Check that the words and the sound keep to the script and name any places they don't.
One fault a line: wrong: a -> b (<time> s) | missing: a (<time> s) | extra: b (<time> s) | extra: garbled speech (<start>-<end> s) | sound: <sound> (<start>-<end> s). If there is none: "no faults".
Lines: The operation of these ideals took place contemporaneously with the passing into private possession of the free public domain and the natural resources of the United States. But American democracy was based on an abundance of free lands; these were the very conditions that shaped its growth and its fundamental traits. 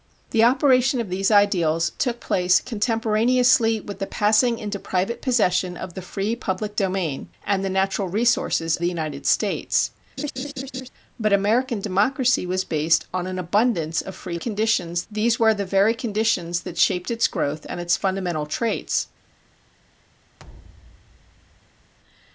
missing: of (8.8 s)
sound: laugh (10.2-10.9 s)
wrong: lands -> conditions (14.3 s)
sound: thud (20.4-21.9 s)